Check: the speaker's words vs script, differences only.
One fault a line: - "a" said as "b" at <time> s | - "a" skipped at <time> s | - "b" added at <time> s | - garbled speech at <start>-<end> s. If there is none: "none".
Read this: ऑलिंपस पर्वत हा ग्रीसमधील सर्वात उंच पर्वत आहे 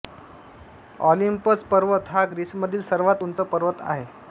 none